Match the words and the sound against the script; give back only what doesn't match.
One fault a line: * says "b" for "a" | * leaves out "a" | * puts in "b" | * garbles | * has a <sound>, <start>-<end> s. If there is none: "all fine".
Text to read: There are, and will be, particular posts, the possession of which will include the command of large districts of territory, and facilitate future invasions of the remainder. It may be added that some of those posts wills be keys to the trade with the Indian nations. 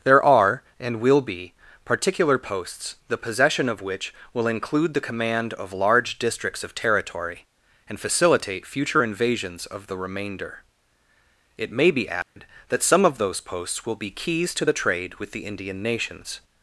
* has a dropout, 12.2-12.4 s
* says "will" for "wills"